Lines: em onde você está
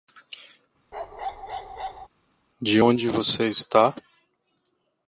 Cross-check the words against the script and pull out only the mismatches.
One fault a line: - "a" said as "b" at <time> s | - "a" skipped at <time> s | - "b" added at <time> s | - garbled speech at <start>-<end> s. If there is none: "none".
- "em" said as "de" at 2.6 s